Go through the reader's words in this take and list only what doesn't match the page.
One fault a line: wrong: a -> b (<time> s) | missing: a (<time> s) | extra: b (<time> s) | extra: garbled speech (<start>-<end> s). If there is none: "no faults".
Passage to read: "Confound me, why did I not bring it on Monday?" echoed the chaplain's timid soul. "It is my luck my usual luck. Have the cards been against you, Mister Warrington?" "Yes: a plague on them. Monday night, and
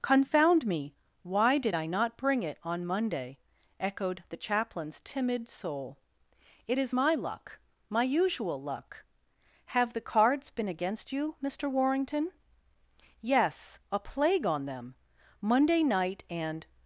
no faults